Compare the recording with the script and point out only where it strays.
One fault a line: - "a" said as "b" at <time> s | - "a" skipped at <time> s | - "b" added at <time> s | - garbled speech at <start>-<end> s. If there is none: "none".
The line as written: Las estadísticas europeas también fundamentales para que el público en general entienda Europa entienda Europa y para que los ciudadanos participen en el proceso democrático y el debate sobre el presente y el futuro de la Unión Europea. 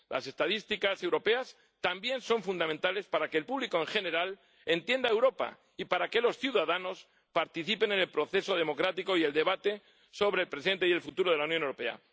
- "son" added at 2.2 s
- "entienda Europa" skipped at 5.6 s